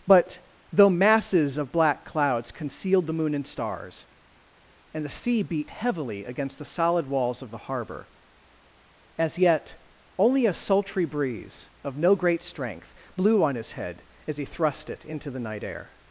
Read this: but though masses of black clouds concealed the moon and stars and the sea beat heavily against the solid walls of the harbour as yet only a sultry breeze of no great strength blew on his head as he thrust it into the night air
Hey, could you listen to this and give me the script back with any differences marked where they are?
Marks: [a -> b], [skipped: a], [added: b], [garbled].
but though masses of black clouds concealed the moon and stars and the sea beat heavily against the solid walls of the harbour as yet only a sultry breeze of no great strength blew on his head as he thrust it into the night air